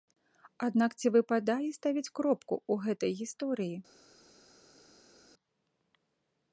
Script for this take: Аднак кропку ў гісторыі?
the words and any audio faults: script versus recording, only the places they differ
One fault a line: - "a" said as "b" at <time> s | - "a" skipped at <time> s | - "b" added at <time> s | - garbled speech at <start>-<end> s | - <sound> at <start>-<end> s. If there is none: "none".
- "ці выпадае ставіць" added at 1.0 s
- "гэтай" added at 2.9 s